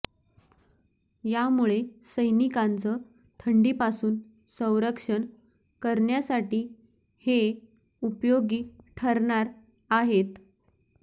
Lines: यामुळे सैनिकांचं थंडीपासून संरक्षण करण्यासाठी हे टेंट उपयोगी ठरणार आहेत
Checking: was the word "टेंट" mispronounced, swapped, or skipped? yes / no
yes